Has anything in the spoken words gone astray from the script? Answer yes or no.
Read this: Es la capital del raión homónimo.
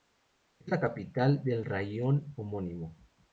no